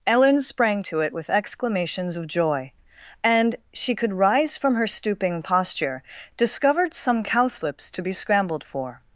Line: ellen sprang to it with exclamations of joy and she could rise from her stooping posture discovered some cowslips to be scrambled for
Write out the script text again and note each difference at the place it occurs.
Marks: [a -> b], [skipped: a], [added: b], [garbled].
ellen sprang to it with exclamations of joy and she could rise from her stooping posture discovered some cowslips to be scrambled for